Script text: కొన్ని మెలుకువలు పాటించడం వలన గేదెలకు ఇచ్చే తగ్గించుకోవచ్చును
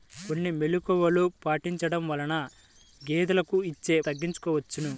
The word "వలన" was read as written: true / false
true